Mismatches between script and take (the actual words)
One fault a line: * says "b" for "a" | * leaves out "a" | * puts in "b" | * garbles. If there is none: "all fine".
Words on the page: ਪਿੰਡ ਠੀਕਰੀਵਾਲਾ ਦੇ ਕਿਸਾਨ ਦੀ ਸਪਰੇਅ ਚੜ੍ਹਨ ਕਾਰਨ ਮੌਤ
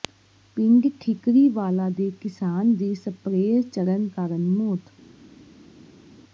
all fine